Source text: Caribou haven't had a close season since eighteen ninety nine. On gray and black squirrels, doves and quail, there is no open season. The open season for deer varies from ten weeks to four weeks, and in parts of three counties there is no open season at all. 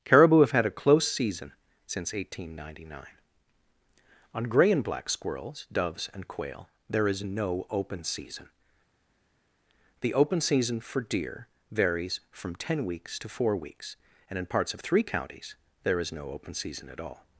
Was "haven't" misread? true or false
true